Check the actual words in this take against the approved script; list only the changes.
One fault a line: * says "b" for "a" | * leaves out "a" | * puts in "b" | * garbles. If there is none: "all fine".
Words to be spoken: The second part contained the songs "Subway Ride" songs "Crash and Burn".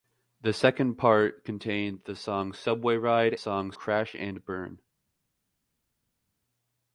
all fine